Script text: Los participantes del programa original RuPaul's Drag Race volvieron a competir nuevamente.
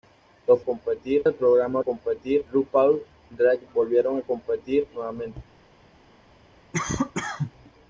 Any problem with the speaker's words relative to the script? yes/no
yes